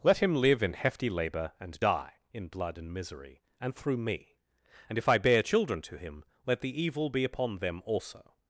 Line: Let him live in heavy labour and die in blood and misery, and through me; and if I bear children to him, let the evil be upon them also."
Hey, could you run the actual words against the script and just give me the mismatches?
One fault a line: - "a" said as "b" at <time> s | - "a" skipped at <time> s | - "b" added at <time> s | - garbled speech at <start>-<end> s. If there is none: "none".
- "heavy" said as "hefty" at 0.7 s